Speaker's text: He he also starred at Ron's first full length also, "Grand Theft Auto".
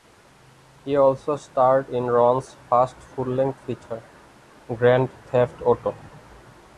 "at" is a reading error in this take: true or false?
true